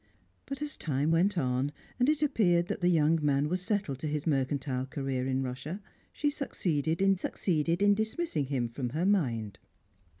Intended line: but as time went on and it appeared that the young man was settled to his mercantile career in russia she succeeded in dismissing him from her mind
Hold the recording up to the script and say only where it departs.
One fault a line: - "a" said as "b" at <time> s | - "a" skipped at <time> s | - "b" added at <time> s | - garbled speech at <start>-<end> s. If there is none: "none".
- "succeeded in" added at 7.1 s